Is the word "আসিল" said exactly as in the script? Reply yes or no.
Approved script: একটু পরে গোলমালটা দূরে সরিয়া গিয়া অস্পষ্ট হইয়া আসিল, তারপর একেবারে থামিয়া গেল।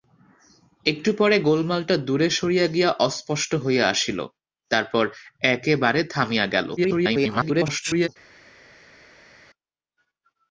yes